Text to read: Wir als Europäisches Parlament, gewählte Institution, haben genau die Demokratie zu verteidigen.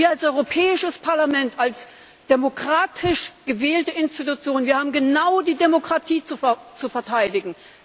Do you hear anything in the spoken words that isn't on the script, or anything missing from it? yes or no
yes